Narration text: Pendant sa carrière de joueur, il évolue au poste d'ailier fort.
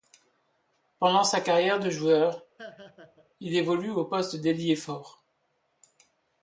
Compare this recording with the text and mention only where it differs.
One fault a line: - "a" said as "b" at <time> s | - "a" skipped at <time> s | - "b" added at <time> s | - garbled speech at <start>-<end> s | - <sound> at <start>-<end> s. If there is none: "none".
- laugh at 2.6-3.3 s